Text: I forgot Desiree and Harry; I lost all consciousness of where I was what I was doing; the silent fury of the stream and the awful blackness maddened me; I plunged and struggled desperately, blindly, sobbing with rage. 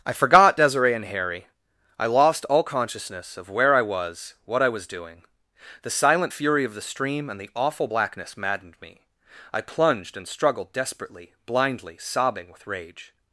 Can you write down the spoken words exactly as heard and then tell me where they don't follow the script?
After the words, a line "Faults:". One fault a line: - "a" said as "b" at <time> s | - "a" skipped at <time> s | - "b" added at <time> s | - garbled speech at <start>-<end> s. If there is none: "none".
I forgot Desiree and Harry; I lost all consciousness of where I was what I was doing; the silent fury of the stream and the awful blackness maddened me; I plunged and struggled desperately, blindly, sobbing with rage.
Faults:
none